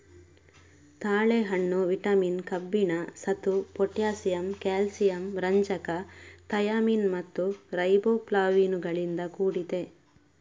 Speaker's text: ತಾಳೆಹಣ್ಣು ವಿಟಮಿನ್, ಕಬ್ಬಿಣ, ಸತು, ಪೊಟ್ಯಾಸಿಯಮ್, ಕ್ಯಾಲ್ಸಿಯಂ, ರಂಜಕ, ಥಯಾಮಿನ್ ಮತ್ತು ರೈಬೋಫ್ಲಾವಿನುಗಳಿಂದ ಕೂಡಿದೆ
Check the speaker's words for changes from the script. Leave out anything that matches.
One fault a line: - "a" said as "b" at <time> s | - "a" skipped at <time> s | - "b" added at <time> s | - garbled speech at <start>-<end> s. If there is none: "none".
none